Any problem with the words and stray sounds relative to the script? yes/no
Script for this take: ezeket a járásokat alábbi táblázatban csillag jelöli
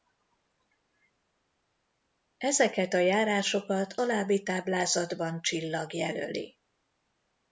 no